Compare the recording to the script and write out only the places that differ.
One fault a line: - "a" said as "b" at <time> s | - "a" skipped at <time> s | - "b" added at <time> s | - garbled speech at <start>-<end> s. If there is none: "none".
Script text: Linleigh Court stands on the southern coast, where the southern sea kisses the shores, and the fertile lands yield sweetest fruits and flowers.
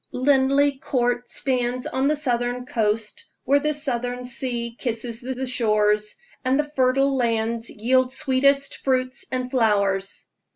- "the" added at 5.3 s